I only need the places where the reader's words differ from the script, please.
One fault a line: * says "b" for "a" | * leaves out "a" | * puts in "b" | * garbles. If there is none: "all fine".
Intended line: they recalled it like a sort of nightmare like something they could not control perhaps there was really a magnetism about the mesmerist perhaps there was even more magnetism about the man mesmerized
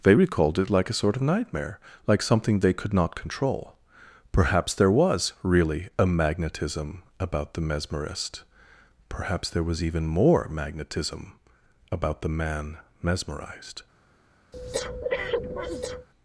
all fine